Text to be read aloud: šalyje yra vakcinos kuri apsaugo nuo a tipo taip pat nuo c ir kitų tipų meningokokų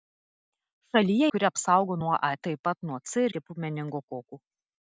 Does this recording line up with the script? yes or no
no